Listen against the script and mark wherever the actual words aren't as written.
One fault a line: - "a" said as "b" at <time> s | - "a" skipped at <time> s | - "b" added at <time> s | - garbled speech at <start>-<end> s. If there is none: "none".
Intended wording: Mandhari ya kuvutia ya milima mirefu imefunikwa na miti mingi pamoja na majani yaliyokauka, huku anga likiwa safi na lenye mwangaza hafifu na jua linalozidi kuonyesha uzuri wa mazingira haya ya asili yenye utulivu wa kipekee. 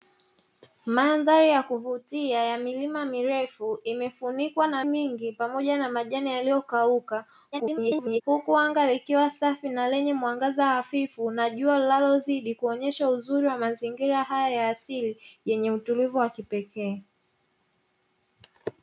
- "miti" skipped at 4.8 s
- garbled speech at 7.5-8.2 s